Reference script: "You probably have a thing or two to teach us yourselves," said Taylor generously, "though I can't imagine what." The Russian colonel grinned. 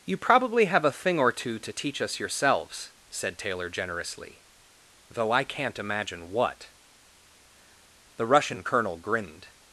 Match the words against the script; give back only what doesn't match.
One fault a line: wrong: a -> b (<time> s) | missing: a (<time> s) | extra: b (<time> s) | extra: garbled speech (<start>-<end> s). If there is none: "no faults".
no faults